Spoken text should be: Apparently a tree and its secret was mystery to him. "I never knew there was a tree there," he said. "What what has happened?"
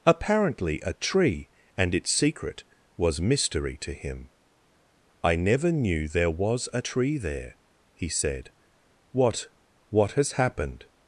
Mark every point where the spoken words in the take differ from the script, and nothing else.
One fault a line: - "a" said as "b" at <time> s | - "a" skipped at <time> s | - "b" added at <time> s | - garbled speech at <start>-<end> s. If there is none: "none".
none